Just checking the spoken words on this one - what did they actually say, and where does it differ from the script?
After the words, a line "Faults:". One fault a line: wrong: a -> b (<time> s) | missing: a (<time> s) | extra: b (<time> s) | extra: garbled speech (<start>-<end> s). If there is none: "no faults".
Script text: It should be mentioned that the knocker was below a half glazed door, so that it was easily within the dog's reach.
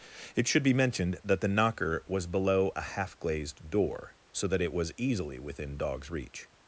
It should be mentioned that the knocker was below a half glazed door, so that it was easily within dog's reach.
Faults:
missing: the (5.8 s)